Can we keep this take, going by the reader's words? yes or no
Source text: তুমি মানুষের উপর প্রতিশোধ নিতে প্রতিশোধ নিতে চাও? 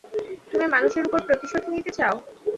no